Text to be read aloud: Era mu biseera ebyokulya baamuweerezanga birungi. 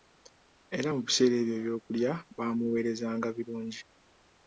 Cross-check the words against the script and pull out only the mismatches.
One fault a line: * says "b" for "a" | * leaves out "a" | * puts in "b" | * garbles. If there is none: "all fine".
* puts in "ebyo"